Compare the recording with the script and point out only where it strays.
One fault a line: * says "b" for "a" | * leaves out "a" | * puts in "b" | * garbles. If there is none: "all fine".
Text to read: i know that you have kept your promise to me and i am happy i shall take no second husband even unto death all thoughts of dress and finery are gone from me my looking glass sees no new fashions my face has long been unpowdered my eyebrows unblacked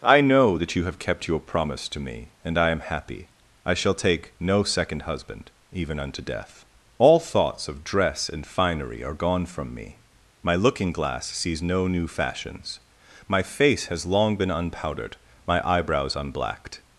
all fine